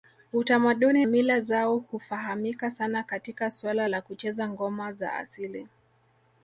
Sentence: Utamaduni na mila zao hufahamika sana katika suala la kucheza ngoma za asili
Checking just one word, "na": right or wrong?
wrong